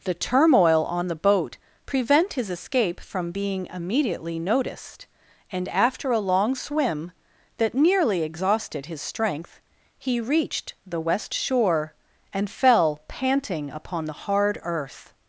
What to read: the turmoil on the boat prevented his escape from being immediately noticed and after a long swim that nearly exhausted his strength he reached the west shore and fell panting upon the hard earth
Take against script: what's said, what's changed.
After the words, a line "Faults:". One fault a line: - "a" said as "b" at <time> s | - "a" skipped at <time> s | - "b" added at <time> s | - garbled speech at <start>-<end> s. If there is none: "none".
the turmoil on the boat prevent his escape from being immediately noticed and after a long swim that nearly exhausted his strength he reached the west shore and fell panting upon the hard earth
Faults:
- "prevented" said as "prevent" at 1.9 s